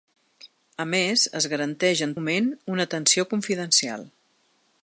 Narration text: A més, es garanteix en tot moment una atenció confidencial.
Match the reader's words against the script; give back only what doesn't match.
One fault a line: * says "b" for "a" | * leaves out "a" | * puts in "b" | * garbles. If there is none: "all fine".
* leaves out "tot"